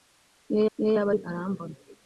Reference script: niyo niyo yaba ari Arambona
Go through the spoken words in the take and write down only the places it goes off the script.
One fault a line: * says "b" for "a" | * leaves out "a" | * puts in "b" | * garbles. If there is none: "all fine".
all fine